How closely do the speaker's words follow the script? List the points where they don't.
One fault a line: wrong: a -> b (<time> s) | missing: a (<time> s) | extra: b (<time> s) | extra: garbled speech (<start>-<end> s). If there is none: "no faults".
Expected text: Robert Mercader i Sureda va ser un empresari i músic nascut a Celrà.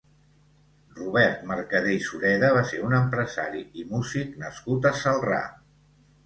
no faults